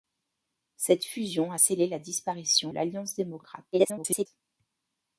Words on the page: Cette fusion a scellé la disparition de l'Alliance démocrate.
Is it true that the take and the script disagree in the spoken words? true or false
true